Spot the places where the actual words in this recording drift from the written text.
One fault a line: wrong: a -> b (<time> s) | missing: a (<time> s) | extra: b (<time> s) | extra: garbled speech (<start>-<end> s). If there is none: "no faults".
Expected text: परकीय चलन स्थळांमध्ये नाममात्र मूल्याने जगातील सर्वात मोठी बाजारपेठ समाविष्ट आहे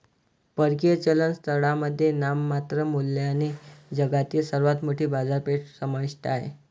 no faults